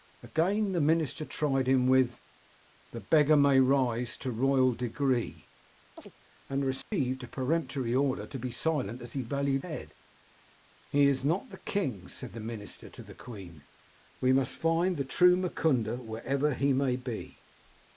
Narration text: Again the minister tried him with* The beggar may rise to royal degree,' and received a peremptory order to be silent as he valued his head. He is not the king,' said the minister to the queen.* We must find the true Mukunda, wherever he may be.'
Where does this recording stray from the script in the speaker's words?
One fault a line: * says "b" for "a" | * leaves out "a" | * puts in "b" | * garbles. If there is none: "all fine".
* leaves out "his"